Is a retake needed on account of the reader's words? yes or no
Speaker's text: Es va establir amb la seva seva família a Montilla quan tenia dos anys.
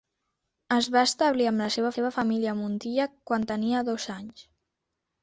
no